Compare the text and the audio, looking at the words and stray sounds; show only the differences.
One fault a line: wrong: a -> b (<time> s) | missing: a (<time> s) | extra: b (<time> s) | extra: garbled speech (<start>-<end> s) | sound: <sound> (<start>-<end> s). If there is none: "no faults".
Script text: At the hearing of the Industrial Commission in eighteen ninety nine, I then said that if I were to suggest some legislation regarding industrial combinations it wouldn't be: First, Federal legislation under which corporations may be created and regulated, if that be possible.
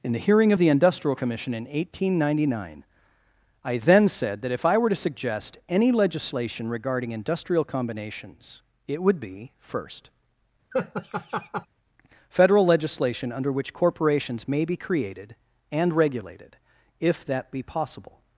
wrong: At -> In (0.0 s)
wrong: some -> any (5.7 s)
wrong: wouldn't -> would (9.0 s)
sound: laugh (10.7-11.7 s)